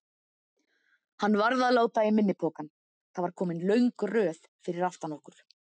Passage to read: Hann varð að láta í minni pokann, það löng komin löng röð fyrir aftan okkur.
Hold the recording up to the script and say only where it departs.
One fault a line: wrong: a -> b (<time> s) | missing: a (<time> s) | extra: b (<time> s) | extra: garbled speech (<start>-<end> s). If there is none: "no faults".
wrong: löng -> var (3.3 s)